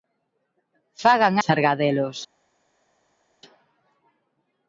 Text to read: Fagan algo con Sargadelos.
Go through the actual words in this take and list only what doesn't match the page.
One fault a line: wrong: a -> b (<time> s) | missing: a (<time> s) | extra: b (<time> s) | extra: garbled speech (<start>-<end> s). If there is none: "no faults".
missing: algo con (1.4 s)